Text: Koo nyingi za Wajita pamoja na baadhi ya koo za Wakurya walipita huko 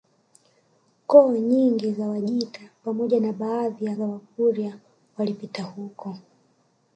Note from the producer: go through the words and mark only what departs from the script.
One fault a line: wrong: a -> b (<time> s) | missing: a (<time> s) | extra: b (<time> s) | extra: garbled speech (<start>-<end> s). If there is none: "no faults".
missing: koo (4.0 s)